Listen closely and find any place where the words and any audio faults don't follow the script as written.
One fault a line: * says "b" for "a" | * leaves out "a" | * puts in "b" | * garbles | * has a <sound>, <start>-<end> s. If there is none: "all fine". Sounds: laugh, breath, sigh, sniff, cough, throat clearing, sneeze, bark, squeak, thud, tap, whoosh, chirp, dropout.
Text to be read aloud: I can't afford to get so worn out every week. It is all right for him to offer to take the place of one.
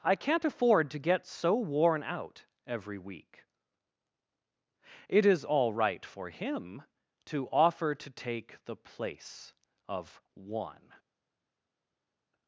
all fine